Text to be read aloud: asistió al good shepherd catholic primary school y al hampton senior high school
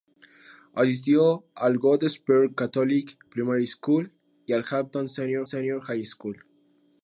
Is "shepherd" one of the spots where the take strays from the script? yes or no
no